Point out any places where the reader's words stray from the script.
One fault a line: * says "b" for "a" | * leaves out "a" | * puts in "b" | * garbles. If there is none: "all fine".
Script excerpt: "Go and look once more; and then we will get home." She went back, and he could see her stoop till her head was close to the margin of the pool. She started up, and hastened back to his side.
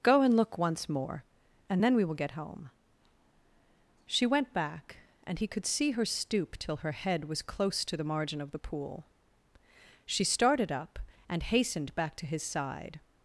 all fine